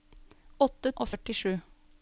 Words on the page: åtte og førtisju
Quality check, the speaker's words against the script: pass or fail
pass